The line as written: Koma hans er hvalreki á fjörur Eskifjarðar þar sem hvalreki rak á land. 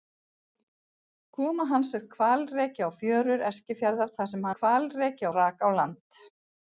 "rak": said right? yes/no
yes